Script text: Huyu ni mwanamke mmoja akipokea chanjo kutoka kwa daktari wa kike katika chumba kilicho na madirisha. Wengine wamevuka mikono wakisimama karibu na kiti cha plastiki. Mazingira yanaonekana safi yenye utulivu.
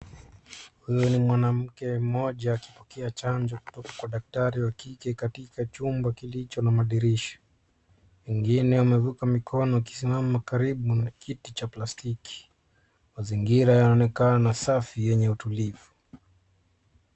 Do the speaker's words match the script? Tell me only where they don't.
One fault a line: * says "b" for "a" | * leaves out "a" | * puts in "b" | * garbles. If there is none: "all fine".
all fine